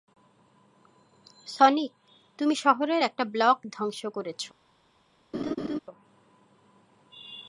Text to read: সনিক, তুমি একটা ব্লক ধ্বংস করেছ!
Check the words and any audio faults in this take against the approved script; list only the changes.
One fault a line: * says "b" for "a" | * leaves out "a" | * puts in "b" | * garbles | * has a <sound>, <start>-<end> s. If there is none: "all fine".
* puts in "শহরের"
* has a laugh, 5.3-5.8 s